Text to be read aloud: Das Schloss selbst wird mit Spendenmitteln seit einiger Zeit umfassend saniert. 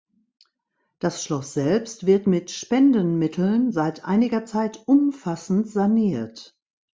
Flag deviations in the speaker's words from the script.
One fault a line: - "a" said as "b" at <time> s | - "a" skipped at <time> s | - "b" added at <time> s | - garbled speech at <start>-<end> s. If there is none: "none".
none